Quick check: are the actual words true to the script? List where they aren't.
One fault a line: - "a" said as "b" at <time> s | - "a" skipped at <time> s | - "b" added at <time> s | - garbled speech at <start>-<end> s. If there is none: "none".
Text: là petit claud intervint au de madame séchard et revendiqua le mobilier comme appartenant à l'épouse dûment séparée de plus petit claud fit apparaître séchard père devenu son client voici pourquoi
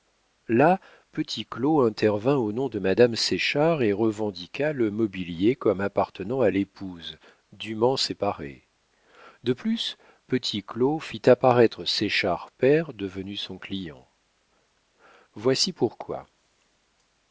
- "nom" added at 2.5 s